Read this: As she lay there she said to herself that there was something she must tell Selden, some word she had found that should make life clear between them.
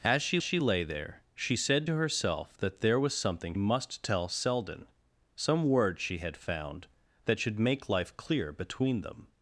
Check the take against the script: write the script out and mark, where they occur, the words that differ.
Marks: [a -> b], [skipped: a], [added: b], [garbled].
As she [added: she] lay there she said to herself that there was something [skipped: she] must tell Selden, some word she had found that should make life clear between them.